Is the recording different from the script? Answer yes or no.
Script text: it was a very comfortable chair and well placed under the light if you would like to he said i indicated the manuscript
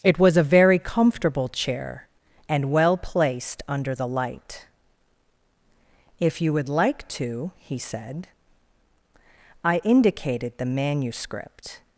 no